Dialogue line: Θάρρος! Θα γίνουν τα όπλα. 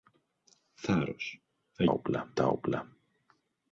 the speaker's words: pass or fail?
fail